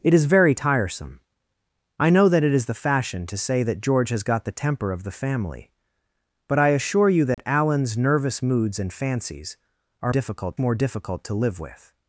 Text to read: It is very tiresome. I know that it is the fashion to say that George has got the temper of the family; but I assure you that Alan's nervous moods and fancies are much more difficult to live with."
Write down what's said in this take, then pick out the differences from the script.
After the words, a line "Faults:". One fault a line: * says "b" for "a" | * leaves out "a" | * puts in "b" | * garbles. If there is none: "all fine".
It is very tiresome. I know that it is the fashion to say that George has got the temper of the family; but I assure you that Alan's nervous moods and fancies are difficult more difficult to live with."
Faults:
* says "difficult" for "much"